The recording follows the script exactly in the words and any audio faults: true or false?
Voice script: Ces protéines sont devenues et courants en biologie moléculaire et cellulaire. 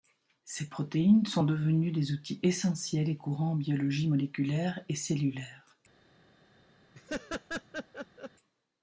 false